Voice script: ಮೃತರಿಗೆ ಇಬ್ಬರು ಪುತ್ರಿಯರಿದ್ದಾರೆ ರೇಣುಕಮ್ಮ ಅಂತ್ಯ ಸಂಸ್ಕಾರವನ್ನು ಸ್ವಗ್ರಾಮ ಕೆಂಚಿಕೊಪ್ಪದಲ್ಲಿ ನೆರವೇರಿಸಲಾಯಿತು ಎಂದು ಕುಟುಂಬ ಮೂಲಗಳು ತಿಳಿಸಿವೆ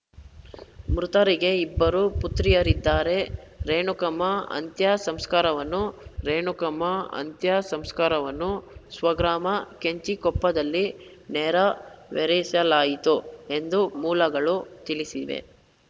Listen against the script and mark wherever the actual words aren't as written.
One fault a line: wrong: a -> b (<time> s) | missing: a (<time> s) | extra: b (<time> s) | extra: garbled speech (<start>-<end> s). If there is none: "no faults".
extra: ರೇಣುಕಮ್ಮ ಅಂತ್ಯ ಸಂಸ್ಕಾರವನ್ನು (6.2 s)
missing: ಕುಟುಂಬ (13.8 s)